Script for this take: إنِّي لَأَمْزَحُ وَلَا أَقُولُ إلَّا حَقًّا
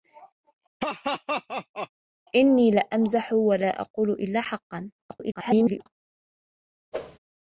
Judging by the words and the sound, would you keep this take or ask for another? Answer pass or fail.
fail